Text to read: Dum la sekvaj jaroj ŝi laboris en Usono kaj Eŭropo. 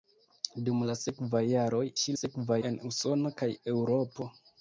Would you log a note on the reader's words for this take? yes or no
yes